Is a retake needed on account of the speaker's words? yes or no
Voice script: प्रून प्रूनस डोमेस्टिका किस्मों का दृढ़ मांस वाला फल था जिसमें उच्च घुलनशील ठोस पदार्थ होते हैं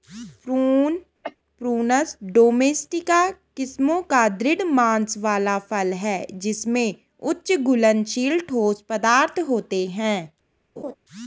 yes